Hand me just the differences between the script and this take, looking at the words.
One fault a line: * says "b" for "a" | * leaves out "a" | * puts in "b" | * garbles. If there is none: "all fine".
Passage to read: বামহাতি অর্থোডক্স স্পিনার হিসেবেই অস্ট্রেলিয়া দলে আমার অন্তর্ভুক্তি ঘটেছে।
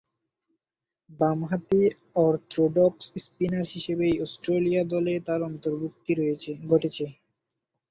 * says "তার" for "আমার"